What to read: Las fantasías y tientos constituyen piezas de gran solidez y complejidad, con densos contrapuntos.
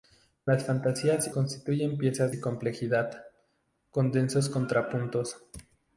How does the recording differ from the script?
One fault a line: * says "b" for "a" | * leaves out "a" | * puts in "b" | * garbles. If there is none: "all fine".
* leaves out "y tientos"
* leaves out "de gran solidez"